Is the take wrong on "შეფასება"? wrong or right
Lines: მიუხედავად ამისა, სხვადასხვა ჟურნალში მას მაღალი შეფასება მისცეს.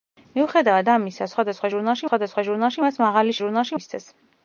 wrong